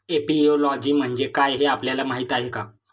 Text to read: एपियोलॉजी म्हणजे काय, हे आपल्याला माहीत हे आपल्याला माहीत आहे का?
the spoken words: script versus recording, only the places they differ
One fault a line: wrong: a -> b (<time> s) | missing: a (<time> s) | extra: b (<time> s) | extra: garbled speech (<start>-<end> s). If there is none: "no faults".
missing: हे आपल्याला माहीत (2.3 s)